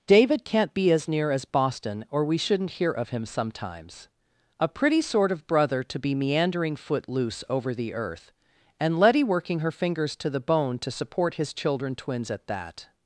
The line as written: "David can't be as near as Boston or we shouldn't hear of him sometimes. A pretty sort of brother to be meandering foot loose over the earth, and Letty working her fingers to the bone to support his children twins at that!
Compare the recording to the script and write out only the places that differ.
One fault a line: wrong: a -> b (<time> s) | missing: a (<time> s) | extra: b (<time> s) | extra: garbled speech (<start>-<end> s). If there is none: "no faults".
no faults